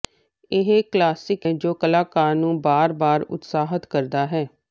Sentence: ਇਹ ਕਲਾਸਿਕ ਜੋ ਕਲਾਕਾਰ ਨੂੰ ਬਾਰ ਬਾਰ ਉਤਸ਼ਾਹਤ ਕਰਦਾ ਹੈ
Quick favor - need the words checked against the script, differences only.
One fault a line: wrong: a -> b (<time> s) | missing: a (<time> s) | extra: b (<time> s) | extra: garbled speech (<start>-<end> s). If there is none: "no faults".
no faults